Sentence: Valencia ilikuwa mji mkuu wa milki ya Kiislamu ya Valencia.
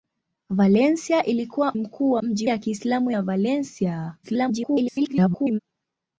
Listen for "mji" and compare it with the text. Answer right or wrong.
wrong